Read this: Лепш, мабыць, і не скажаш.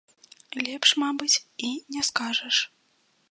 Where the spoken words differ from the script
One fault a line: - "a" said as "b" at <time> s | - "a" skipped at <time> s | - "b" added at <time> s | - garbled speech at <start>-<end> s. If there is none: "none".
none